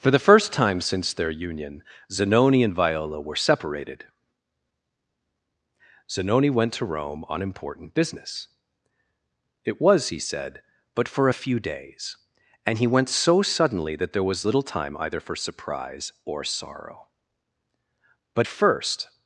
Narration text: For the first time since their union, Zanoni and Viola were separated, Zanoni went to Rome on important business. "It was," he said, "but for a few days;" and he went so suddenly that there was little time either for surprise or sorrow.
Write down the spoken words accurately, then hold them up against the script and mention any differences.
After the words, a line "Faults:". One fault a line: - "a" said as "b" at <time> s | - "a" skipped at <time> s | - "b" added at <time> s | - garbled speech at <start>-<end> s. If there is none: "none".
For the first time since their union, Zanoni and Viola were separated, Zanoni went to Rome on important business. "It was," he said, "but for a few days;" and he went so suddenly that there was little time either for surprise or sorrow. But first
Faults:
- "But first" added at 18.3 s